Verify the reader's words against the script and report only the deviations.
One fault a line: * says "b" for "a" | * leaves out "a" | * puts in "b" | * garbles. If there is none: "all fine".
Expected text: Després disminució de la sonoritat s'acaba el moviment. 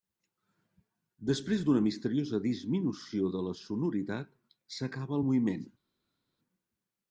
* puts in "d'una misteriosa"